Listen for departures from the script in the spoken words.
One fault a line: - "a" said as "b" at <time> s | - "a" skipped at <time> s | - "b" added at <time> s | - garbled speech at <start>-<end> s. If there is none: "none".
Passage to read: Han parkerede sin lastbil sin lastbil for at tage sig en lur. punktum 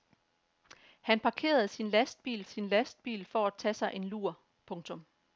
none